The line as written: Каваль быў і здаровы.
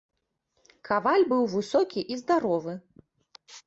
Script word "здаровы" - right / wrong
right